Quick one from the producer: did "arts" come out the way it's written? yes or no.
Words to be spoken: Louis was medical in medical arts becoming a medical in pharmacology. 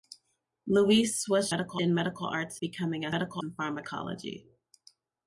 yes